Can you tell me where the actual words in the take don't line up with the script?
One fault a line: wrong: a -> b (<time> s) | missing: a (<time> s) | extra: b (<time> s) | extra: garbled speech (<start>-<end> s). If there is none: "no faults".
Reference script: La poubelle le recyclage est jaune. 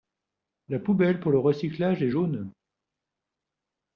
extra: pour (1.2 s)